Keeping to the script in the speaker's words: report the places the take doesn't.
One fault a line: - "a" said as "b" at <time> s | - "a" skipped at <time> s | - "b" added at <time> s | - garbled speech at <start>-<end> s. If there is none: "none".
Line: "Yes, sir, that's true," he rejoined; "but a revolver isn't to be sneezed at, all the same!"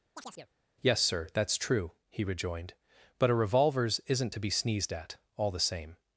- "revolver" said as "revolvers" at 3.3 s